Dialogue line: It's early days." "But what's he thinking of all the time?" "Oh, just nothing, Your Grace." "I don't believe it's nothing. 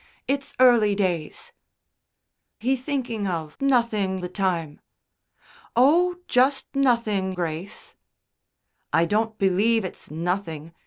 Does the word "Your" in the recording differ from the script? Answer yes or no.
yes